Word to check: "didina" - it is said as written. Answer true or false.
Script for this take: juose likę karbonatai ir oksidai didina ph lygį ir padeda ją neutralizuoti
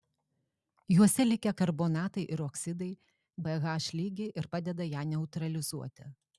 false